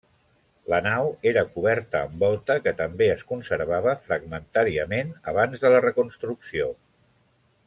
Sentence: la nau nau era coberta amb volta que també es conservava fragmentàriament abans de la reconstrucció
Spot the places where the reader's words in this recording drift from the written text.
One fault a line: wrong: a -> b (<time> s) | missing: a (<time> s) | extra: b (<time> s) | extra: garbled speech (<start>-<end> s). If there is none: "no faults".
missing: nau (1.1 s)